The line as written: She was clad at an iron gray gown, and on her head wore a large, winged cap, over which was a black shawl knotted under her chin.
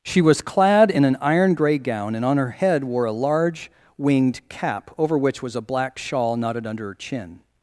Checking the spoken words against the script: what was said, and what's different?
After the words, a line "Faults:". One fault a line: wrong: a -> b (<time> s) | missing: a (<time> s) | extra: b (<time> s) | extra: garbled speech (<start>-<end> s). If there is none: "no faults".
She was clad in an iron gray gown, and on her head wore a large, winged cap, over which was a black shawl knotted under her chin.
Faults:
wrong: at -> in (0.9 s)